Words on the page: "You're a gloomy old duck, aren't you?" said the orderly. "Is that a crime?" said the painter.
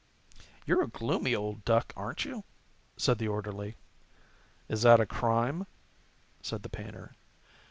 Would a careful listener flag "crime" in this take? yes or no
no